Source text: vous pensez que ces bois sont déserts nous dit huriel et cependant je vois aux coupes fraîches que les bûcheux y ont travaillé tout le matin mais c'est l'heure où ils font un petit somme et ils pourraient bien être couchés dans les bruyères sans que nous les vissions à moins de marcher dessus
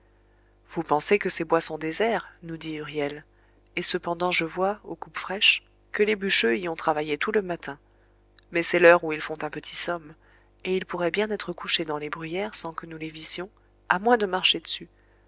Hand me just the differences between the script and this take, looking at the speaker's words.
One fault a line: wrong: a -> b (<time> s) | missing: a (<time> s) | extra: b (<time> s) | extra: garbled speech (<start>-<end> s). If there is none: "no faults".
no faults